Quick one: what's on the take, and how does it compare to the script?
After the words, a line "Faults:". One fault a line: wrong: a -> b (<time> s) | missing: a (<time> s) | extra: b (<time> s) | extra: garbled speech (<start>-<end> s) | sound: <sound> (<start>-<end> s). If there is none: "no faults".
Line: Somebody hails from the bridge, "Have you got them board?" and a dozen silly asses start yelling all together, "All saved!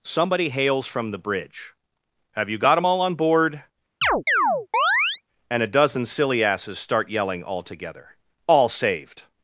Somebody hails from the bridge, "Have you got them all on board?" and a dozen silly asses start yelling all together, "All saved!
Faults:
extra: all on (2.8 s)
sound: chirp (4.0-5.2 s)